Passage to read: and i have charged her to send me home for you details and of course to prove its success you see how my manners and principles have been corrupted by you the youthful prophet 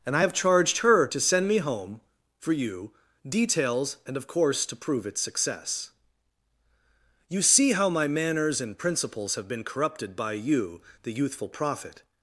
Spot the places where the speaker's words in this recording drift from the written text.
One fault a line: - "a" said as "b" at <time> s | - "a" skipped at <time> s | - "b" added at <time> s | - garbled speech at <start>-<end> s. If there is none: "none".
none